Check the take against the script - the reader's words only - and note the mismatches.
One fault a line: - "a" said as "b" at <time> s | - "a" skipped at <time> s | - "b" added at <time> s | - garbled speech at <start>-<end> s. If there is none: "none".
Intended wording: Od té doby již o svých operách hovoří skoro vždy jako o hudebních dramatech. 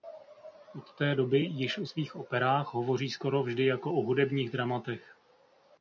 none